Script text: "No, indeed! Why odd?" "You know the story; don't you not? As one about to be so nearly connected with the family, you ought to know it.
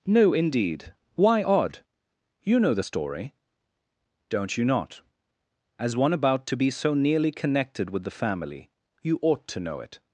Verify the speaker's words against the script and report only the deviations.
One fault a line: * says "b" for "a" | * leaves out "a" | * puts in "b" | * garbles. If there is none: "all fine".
all fine